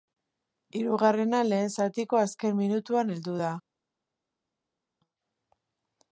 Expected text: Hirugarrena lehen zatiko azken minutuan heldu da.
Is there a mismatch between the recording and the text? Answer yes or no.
no